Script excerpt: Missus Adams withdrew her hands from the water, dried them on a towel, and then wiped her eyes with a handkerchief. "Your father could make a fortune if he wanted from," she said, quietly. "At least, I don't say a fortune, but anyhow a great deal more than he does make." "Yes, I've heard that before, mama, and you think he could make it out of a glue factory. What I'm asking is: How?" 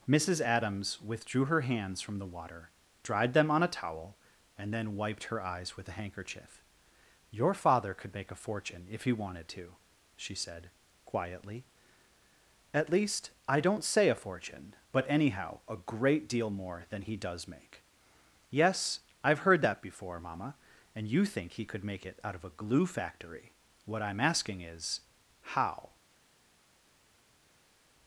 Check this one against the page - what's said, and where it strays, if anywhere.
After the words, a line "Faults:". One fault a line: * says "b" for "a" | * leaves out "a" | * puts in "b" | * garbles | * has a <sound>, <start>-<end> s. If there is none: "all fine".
Missus Adams withdrew her hands from the water, dried them on a towel, and then wiped her eyes with a handkerchief. "Your father could make a fortune if he wanted to," she said, quietly. "At least, I don't say a fortune, but anyhow a great deal more than he does make." "Yes, I've heard that before, mama, and you think he could make it out of a glue factory. What I'm asking is: How?"
Faults:
* says "to" for "from"